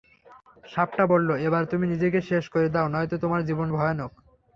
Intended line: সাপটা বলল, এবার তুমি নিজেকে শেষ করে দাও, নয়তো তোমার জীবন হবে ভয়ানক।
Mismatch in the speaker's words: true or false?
true